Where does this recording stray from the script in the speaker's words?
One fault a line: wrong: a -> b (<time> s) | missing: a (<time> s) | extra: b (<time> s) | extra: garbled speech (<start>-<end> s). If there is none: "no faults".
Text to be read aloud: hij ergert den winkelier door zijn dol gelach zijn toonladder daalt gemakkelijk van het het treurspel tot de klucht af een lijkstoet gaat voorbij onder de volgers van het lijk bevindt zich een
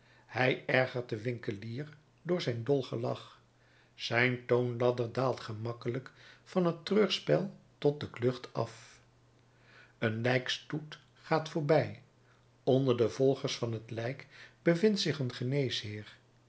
missing: het (6.9 s)